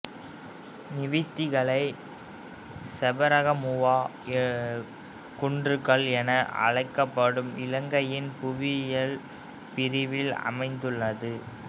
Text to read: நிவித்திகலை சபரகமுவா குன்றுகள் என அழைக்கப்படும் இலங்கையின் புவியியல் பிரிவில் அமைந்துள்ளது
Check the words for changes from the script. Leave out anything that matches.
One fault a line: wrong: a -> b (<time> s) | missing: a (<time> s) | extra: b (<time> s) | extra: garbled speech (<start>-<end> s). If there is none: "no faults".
no faults